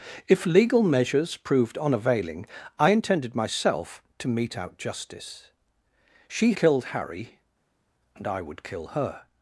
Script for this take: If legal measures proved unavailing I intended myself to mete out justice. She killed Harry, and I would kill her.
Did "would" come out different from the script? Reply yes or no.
no